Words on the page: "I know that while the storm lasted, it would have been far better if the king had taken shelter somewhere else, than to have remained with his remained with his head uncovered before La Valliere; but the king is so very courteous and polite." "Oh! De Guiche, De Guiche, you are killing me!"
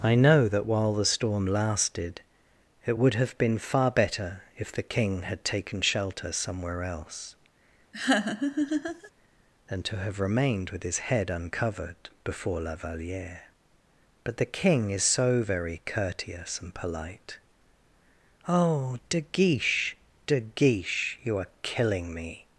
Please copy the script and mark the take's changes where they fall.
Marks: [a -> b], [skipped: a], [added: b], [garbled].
"I know that while the storm lasted, it would have been far better if the king had taken shelter somewhere else, than to have remained with his [skipped: remained with his] head uncovered before La Valliere; but the king is so very courteous and polite." "Oh! De Guiche, De Guiche, you are killing me!"